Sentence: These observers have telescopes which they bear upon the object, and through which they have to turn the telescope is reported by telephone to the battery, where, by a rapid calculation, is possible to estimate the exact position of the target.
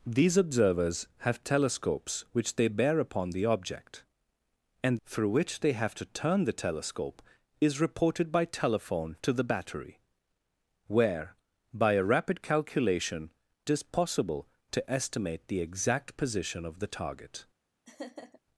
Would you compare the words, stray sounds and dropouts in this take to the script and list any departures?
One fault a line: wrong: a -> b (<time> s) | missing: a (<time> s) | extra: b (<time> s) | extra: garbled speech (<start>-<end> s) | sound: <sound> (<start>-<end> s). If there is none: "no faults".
sound: laugh (17.8-18.4 s)